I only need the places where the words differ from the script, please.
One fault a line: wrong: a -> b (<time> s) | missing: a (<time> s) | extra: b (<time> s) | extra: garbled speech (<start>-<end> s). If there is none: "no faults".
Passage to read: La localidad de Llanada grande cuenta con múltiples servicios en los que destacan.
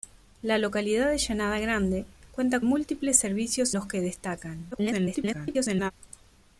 missing: con (2.6 s)
missing: en (3.7 s)
extra: garbled speech (4.7-5.9 s)